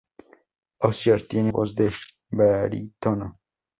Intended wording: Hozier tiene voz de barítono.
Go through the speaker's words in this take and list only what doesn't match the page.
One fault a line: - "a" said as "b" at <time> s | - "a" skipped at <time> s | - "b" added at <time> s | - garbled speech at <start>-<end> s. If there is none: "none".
none